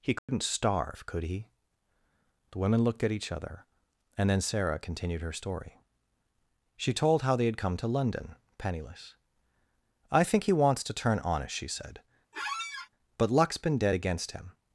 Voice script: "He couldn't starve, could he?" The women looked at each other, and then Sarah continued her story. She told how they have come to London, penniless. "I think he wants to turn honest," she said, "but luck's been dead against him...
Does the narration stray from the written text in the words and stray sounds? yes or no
yes